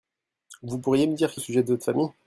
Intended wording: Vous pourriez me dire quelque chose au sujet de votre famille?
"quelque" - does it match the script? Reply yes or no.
no